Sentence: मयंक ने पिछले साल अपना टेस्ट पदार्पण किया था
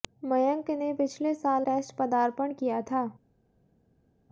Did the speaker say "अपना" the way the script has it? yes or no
no